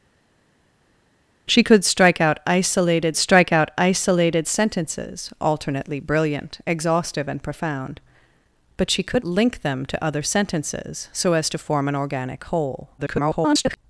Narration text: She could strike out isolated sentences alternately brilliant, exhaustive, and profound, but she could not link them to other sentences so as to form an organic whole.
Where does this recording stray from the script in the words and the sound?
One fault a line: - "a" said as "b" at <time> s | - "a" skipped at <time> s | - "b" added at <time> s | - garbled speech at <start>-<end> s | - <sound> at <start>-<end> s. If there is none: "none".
- "strike out isolated" added at 3.1 s
- "not" skipped at 9.2 s
- garbled speech at 13.0-13.8 s